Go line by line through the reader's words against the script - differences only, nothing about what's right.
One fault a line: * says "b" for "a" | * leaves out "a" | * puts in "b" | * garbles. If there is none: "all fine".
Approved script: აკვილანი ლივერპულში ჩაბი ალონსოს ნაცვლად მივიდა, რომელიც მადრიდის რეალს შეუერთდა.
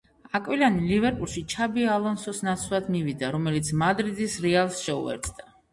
all fine